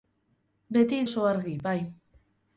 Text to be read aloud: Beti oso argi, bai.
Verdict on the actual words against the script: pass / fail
pass